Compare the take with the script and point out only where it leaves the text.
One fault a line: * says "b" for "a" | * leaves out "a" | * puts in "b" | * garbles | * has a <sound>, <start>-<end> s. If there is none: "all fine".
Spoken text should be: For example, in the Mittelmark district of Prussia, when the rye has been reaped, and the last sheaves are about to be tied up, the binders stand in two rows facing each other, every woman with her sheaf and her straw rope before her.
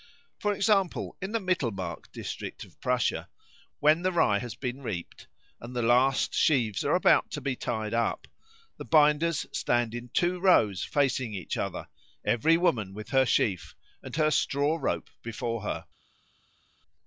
all fine